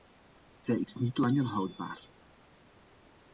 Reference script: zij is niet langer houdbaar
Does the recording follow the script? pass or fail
pass